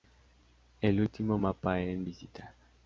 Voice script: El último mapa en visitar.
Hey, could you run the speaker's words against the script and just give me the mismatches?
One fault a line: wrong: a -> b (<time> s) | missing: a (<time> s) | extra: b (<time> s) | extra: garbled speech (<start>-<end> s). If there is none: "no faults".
no faults